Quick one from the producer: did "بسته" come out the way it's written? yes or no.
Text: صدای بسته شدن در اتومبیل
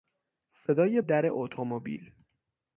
no